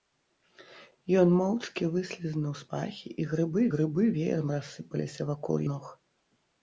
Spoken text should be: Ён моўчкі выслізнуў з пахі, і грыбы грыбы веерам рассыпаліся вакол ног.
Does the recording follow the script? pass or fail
pass